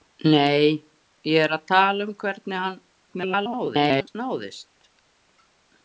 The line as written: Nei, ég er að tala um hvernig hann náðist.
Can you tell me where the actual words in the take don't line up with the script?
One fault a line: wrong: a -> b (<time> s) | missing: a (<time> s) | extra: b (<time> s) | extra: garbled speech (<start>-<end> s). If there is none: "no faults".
extra: garbled speech (3.1-4.2 s)